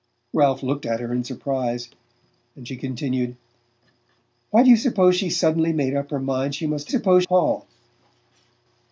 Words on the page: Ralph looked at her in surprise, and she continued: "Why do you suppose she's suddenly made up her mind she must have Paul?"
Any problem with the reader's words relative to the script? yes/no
yes